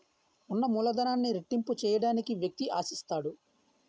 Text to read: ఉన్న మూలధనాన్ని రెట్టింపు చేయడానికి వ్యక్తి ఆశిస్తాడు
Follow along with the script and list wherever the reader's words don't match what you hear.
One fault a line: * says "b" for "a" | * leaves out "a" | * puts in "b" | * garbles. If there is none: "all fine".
all fine